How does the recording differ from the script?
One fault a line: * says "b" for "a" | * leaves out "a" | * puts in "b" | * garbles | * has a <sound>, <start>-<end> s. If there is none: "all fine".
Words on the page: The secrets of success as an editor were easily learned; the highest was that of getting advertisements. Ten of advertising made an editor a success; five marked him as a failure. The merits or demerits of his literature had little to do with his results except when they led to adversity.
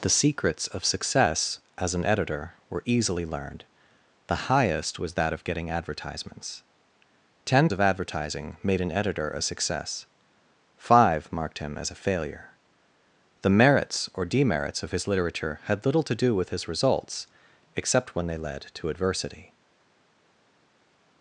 all fine